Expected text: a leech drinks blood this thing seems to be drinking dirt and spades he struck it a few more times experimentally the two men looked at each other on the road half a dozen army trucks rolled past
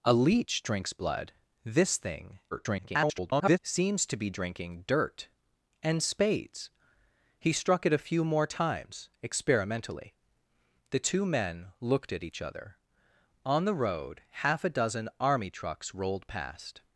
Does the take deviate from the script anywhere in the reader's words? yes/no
yes